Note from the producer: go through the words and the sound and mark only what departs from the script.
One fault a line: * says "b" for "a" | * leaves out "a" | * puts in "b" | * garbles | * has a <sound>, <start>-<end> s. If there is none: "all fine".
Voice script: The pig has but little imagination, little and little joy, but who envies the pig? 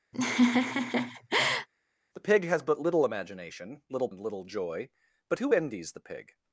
* has a laugh, 0.1-1.7 s